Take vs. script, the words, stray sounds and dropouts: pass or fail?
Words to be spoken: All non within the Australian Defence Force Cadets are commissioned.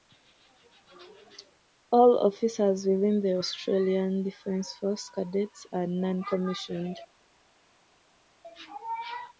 fail